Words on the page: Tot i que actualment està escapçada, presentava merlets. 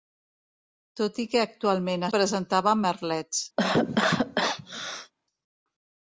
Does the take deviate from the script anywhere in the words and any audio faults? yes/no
yes